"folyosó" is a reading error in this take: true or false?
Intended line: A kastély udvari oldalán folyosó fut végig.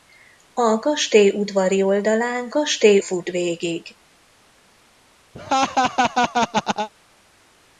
true